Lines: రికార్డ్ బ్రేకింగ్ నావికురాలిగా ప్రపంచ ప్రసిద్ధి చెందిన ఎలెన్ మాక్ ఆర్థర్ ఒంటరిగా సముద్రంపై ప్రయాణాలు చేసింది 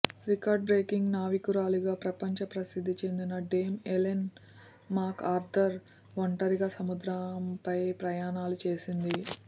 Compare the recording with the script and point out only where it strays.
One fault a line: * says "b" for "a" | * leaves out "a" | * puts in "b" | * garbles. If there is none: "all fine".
* puts in "డేమ్"